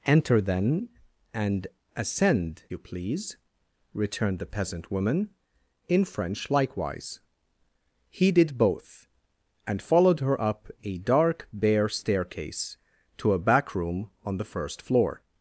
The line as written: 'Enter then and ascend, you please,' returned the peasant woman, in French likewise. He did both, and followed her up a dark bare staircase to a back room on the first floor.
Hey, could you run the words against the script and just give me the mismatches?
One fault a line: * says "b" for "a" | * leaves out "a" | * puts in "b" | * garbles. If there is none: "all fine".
all fine